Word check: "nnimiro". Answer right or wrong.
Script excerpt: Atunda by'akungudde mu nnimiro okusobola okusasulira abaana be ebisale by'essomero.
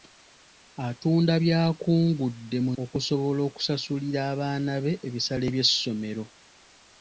wrong